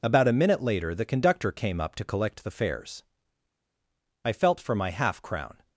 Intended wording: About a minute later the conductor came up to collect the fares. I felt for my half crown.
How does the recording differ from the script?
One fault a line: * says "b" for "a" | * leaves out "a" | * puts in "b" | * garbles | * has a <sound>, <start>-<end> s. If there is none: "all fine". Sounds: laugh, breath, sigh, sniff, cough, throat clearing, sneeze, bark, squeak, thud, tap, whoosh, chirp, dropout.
all fine